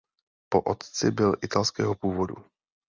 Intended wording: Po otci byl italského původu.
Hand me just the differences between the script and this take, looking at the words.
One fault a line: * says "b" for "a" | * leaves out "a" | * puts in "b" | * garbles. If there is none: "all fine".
all fine